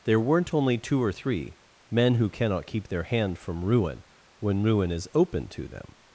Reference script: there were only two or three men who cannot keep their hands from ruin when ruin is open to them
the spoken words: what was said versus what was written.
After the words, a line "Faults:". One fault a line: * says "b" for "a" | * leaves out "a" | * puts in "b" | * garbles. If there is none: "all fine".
there weren't only two or three men who cannot keep their hand from ruin when ruin is open to them
Faults:
* says "weren't" for "were"
* says "hand" for "hands"